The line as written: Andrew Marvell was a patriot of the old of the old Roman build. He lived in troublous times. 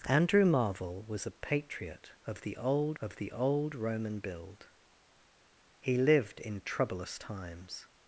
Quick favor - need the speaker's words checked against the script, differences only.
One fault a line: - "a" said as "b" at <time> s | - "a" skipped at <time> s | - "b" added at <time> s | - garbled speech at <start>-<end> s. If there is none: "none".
none